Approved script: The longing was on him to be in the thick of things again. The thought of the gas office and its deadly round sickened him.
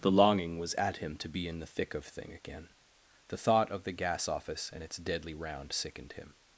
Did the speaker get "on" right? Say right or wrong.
wrong